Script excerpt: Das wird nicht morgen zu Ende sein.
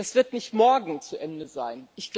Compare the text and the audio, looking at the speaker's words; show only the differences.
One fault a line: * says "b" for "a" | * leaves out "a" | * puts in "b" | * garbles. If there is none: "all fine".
all fine